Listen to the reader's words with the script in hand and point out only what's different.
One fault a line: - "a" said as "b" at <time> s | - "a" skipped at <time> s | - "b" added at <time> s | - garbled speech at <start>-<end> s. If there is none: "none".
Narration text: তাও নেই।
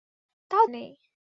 none